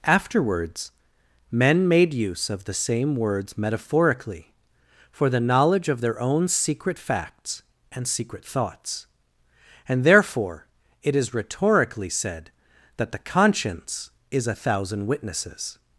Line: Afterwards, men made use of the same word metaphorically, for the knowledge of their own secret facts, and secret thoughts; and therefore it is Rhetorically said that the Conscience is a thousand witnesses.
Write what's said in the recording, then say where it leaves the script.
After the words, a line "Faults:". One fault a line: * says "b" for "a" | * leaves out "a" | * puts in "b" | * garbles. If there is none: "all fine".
Afterwards, men made use of the same words metaphorically, for the knowledge of their own secret facts, and secret thoughts; and therefore it is Rhetorically said that the Conscience is a thousand witnesses.
Faults:
* says "words" for "word"